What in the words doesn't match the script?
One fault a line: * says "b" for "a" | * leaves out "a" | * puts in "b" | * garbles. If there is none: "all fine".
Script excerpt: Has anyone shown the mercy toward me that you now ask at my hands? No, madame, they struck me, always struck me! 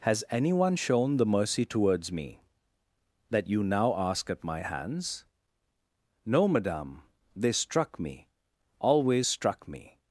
* says "towards" for "toward"